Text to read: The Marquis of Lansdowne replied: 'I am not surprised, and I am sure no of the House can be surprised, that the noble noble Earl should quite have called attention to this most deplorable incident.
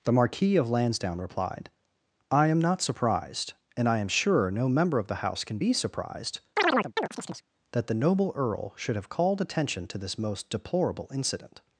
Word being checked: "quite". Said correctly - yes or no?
no